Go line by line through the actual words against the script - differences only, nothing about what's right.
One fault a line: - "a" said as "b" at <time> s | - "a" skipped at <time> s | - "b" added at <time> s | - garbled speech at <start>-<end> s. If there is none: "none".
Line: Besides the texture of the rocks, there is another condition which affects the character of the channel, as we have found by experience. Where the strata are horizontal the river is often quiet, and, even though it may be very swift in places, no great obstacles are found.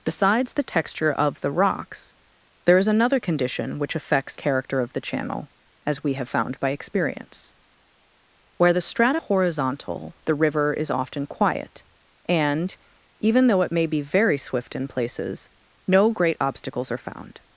- "the" skipped at 4.3 s
- "are" skipped at 9.2 s